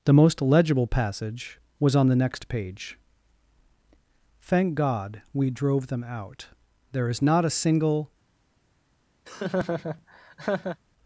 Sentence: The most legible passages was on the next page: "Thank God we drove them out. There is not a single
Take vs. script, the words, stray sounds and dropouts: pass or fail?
fail